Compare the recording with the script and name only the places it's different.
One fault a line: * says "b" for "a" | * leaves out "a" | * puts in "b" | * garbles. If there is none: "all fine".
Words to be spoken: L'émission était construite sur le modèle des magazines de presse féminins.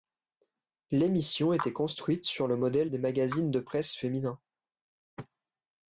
all fine